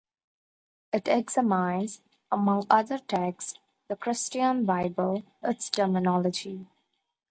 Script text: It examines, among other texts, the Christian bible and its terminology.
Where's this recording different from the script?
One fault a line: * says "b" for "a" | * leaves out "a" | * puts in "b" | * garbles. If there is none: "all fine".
* leaves out "and"